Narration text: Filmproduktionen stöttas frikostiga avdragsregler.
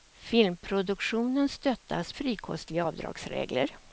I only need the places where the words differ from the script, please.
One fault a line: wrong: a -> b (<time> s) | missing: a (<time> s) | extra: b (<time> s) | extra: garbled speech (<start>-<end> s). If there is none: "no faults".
no faults